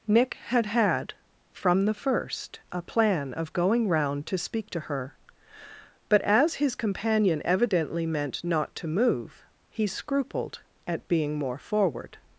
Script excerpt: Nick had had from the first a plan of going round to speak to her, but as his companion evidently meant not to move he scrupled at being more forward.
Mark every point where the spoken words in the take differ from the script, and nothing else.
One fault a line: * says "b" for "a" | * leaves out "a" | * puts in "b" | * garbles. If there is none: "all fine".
all fine